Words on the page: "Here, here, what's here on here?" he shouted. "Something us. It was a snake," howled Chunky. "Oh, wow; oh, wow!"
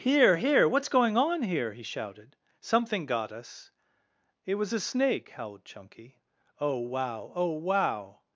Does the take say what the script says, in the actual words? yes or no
no